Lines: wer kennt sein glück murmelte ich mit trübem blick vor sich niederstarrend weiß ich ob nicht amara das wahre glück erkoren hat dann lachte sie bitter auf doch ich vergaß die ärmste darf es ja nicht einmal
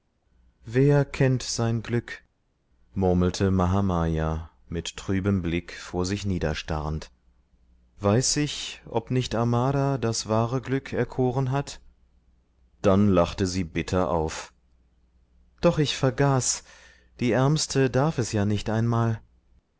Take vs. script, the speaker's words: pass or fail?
fail